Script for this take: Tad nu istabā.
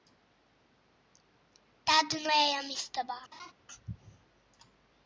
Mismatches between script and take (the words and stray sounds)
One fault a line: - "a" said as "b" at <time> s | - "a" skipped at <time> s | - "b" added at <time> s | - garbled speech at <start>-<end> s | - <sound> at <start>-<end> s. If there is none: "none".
- "ejam" added at 2.3 s
- laugh at 3.3-3.5 s